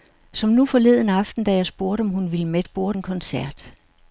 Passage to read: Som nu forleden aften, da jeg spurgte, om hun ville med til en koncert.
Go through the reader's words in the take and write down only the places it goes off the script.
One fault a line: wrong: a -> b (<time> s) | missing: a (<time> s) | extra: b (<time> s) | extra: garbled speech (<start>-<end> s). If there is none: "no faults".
wrong: til -> spurgte (2.6 s)